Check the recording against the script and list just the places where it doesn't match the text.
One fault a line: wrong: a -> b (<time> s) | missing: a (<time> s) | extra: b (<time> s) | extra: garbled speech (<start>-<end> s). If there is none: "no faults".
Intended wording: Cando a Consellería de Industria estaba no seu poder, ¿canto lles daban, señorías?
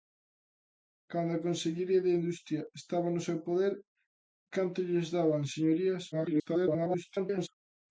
extra: garbled speech (6.1-7.5 s)